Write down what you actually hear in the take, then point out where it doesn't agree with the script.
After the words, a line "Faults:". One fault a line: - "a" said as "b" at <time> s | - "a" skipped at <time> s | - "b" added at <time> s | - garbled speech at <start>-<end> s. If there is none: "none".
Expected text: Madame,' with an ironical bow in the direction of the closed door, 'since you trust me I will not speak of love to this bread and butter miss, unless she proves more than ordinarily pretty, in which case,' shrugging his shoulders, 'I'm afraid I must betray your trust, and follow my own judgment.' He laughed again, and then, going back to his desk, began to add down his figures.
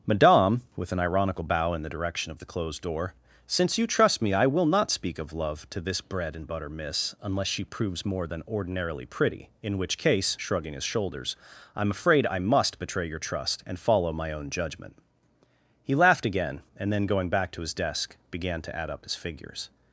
Madame,' with an ironical bow in the direction of the closed door, 'since you trust me I will not speak of love to this bread and butter miss, unless she proves more than ordinarily pretty, in which case,' shrugging his shoulders, 'I'm afraid I must betray your trust, and follow my own judgment.' He laughed again, and then, going back to his desk, began to add up his figures.
Faults:
- "down" said as "up" at 18.9 s